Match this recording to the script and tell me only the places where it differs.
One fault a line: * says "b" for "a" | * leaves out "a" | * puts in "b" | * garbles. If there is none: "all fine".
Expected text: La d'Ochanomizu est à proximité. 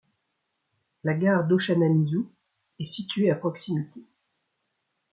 * puts in "gare"
* puts in "située"